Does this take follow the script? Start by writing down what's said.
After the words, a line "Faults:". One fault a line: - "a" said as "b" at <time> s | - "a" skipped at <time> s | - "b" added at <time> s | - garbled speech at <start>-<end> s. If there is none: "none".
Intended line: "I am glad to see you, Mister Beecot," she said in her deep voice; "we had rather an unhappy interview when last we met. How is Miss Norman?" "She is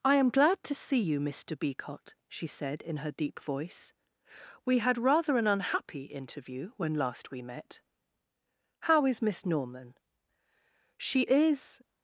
"I am glad to see you, Mister Beecot," she said in her deep voice; "we had rather an unhappy interview when last we met. How is Miss Norman?" "She is
Faults:
none